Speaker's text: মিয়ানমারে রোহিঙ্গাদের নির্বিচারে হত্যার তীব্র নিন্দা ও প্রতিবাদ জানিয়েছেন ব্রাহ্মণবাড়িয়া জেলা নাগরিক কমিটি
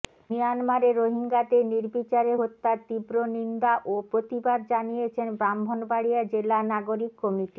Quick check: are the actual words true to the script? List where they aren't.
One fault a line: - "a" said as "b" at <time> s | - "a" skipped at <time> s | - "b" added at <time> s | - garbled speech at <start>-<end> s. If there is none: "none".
none